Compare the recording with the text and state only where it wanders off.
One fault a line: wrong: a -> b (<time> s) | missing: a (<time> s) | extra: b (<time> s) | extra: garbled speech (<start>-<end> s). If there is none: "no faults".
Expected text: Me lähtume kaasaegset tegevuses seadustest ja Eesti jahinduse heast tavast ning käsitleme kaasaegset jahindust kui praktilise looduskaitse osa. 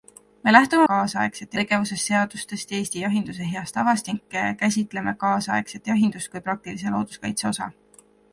no faults